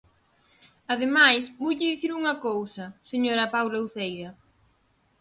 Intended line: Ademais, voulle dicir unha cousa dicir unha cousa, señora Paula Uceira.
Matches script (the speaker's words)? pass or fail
fail